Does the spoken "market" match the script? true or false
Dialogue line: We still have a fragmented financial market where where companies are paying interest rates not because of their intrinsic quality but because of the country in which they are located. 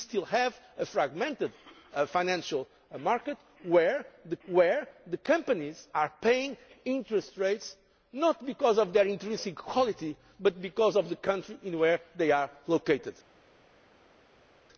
true